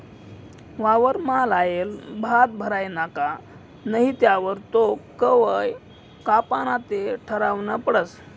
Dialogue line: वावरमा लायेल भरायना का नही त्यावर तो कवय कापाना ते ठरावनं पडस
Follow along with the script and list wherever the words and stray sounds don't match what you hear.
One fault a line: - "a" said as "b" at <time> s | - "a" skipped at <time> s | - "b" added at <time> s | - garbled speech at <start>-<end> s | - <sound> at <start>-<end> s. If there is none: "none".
- "भात" added at 2.2 s